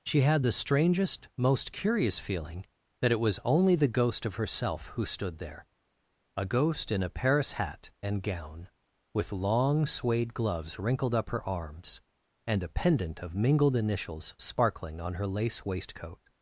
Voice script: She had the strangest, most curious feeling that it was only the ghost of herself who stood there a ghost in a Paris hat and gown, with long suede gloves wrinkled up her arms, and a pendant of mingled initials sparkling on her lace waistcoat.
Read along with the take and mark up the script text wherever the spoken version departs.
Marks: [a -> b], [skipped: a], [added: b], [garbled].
She had the strangest, most curious feeling that it was only the ghost of herself who stood there a ghost in a Paris hat and gown, with long suede gloves wrinkled up her arms, and a pendant of mingled initials sparkling on her lace waistcoat.